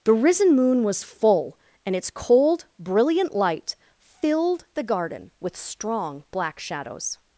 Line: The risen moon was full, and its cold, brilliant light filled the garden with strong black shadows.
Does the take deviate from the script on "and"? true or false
false